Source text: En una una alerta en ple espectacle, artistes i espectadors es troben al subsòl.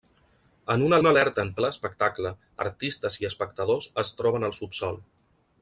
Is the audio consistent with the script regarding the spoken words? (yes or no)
yes